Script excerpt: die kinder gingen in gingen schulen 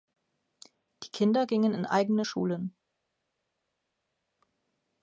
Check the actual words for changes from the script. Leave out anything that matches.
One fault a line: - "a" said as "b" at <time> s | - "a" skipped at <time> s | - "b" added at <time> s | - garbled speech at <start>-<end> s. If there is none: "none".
- "gingen" said as "eigene" at 1.9 s